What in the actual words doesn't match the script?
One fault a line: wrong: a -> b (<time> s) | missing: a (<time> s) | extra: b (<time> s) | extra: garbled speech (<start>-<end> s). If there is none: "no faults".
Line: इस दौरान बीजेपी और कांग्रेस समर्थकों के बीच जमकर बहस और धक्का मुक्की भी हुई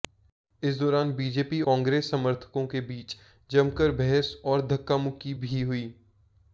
missing: और (1.6 s)